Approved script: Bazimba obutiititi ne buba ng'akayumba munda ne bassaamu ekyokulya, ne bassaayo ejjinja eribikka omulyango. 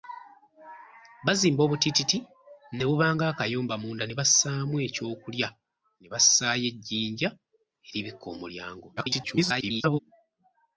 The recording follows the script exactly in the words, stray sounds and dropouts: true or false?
false